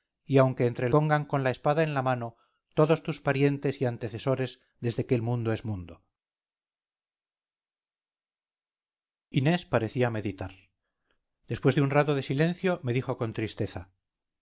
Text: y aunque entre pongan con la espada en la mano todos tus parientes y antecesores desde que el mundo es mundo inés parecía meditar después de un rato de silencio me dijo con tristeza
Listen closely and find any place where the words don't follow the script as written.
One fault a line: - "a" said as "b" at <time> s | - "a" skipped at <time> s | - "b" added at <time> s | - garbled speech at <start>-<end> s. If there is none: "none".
none